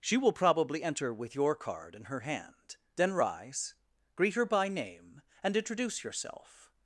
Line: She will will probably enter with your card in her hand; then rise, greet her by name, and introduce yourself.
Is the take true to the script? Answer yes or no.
no